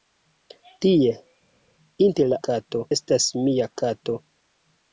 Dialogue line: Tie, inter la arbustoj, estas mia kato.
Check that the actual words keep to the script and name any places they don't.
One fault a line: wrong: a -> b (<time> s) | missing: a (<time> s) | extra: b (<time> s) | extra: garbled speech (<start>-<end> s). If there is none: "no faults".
wrong: arbustoj -> kato (2.5 s)